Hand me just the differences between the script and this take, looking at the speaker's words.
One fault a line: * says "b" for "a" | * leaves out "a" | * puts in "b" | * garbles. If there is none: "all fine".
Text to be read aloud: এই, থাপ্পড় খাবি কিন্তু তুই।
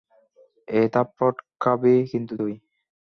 all fine